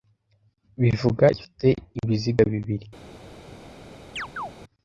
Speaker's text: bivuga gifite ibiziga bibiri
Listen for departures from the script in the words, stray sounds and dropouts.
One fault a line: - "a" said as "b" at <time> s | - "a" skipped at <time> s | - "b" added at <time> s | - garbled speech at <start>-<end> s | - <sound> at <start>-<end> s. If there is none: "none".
- chirp at 4.2-4.5 s